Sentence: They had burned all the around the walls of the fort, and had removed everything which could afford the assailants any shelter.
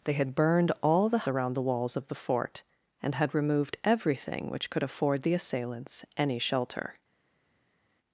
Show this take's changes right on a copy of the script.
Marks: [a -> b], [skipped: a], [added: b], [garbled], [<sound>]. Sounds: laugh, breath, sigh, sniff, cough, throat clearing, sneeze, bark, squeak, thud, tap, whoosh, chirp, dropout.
They had burned all the around the walls of the fort, and had removed everything which could afford the assailants any shelter.